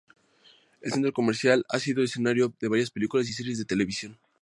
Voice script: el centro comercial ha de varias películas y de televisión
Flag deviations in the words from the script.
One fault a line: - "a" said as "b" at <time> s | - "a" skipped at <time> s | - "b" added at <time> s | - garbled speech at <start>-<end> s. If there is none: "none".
- "sido escenario" added at 1.8 s
- "series" added at 3.3 s